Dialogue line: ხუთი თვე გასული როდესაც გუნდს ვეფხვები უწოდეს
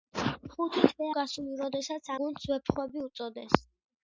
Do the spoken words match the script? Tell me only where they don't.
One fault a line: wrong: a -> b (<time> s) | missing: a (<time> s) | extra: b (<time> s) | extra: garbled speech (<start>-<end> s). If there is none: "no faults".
no faults